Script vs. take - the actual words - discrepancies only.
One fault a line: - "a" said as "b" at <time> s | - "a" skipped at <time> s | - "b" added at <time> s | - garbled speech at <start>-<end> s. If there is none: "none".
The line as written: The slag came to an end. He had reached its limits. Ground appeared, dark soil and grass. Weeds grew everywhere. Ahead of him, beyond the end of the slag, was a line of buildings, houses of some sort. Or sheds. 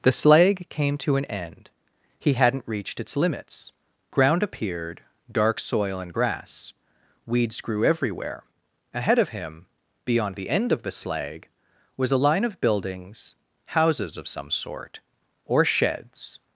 - "had" said as "hadn't" at 2.3 s